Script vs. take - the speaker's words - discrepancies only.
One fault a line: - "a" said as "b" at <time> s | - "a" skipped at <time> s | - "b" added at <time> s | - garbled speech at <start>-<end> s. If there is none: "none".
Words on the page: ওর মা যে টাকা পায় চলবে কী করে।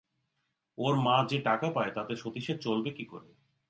- "তাতে সতীশের" added at 1.9 s